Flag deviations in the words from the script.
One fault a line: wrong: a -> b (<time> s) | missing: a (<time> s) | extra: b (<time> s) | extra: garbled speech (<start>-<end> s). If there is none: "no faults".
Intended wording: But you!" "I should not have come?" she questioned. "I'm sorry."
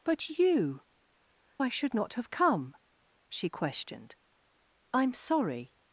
no faults